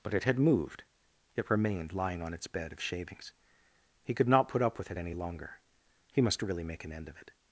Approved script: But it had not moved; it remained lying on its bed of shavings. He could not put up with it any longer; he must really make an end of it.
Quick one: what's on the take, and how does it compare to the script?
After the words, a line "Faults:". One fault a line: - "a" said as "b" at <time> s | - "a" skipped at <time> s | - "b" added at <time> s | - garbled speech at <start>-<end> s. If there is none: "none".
But it had moved; it remained lying on its bed of shavings. He could not put up with it any longer; he must really make an end of it.
Faults:
- "not" skipped at 0.4 s